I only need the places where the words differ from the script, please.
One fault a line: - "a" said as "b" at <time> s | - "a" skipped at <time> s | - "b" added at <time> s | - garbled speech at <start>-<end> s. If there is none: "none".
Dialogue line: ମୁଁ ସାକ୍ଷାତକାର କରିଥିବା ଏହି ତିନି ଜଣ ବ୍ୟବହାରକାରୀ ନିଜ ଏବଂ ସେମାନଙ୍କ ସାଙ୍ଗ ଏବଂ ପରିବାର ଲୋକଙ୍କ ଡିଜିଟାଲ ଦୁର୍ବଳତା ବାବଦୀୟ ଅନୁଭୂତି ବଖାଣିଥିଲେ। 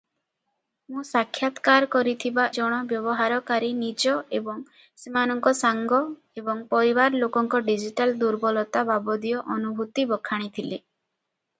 - "ଏହି ତିନି" skipped at 2.5 s